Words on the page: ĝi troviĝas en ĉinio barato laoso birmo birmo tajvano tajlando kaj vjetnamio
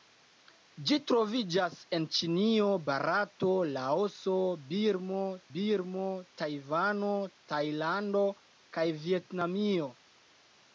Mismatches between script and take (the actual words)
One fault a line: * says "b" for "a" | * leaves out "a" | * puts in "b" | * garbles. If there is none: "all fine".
all fine